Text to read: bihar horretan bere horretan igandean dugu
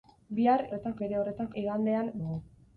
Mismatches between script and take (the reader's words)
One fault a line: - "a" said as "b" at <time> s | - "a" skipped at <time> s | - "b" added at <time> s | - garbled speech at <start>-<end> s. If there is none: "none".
none